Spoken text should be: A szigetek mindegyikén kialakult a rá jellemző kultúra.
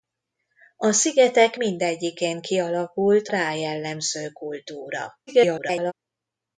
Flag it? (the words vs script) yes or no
yes